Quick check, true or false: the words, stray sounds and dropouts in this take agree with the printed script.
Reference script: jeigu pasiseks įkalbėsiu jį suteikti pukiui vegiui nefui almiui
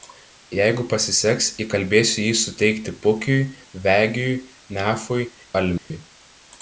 false